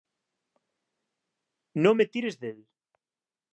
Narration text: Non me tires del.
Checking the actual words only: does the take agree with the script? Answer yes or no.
yes